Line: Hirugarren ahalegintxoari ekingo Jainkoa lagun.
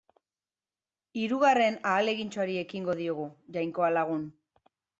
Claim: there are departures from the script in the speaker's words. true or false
true